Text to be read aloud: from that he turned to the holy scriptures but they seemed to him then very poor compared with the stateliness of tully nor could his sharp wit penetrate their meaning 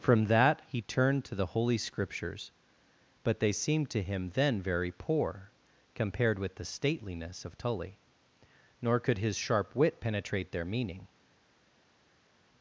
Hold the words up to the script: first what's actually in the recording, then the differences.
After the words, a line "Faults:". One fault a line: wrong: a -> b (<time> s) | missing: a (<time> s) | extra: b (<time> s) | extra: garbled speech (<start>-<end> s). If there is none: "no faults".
from that he turned to the holy scriptures but they seemed to him then very poor compared with the stateliness of tully nor could his sharp wit penetrate their meaning
Faults:
no faults